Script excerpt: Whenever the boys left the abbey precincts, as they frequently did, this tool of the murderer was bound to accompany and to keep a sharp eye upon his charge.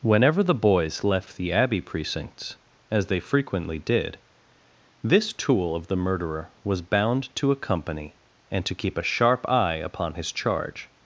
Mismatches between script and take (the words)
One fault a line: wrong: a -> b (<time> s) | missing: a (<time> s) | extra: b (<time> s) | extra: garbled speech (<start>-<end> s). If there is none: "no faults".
no faults